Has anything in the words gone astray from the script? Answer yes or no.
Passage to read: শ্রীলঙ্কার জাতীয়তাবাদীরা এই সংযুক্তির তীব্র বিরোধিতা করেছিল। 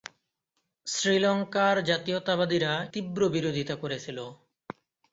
yes